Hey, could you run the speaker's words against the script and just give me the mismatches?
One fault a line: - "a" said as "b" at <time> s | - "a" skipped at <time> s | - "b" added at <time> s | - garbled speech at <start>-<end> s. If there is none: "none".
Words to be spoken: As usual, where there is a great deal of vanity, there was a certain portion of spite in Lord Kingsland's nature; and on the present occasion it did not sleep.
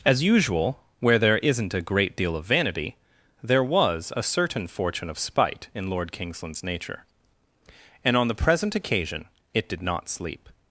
- "is" said as "isn't" at 1.4 s
- "portion" said as "fortune" at 4.7 s